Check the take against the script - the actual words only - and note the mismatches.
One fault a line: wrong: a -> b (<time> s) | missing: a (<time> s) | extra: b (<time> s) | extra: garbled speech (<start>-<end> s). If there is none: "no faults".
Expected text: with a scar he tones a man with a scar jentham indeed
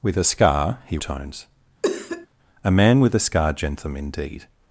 no faults